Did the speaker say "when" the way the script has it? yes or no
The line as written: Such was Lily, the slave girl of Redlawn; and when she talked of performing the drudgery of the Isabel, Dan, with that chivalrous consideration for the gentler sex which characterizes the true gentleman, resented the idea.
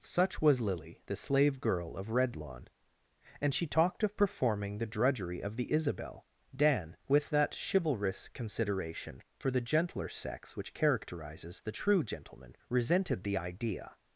no